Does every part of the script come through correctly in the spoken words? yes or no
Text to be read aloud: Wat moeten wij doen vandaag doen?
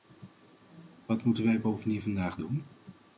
no